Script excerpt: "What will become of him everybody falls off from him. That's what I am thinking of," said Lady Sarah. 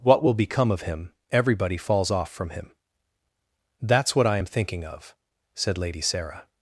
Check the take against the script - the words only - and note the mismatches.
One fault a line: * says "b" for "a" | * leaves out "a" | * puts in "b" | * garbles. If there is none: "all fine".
all fine